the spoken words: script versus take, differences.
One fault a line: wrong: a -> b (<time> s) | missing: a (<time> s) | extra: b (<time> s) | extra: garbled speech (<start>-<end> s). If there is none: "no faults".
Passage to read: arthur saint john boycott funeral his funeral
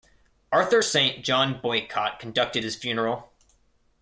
wrong: funeral -> conducted (2.2 s)